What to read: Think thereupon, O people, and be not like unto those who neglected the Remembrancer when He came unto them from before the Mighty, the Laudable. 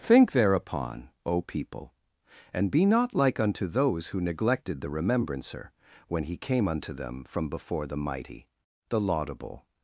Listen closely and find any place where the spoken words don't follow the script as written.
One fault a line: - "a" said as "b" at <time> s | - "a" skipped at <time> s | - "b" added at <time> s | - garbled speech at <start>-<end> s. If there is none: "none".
none